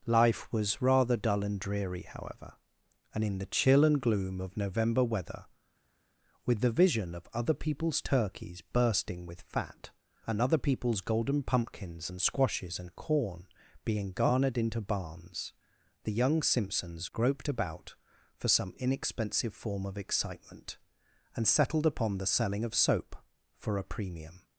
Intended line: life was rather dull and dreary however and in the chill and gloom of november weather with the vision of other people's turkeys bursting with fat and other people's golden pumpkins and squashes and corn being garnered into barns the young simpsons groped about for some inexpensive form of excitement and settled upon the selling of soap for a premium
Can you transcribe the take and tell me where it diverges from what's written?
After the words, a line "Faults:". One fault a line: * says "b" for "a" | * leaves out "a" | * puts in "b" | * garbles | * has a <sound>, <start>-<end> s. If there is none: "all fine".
life was rather dull and dreary however and in the chill and gloom of november weather with the vision of other people's turkeys bursting with fat and other people's golden pumpkins and squashes and corn being garnered into barns the young simpsons groped about for some inexpensive form of excitement and settled upon the selling of soap for a premium
Faults:
all fine